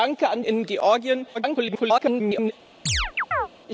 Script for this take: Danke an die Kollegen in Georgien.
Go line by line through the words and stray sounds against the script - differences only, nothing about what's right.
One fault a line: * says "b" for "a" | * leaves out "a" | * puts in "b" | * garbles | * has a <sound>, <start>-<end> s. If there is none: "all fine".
* leaves out "die Kollegen"
* garbles
* has a chirp, 2.9-3.5 s